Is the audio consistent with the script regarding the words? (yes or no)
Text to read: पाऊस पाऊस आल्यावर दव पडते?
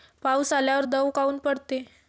no